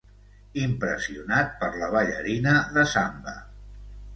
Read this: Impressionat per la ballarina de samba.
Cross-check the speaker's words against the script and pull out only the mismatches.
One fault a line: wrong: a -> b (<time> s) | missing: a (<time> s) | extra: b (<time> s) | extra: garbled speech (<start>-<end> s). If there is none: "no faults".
no faults